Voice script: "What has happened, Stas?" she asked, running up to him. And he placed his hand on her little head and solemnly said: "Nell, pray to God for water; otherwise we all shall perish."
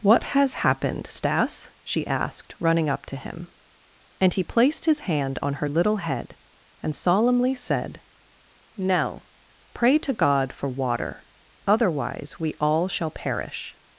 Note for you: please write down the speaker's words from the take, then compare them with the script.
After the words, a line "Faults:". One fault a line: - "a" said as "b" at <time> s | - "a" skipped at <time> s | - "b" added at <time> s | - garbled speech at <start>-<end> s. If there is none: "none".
"What has happened, Stas?" she asked, running up to him. And he placed his hand on her little head and solemnly said: "Nell, pray to God for water; otherwise we all shall perish."
Faults:
none